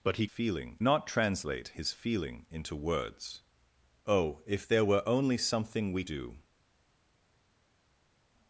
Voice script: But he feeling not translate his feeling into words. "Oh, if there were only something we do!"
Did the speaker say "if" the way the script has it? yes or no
yes